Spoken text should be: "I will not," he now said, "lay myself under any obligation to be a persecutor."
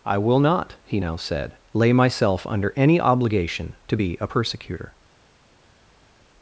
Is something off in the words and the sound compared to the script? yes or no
no